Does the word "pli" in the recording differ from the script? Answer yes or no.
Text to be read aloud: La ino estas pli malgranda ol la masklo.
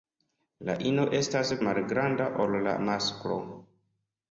yes